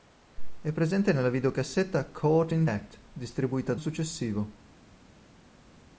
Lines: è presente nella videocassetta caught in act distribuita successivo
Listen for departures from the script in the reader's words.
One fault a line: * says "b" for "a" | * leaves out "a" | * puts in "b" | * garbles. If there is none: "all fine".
all fine